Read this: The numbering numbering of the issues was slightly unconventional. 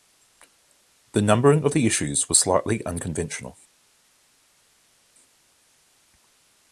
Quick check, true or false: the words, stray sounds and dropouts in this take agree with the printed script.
false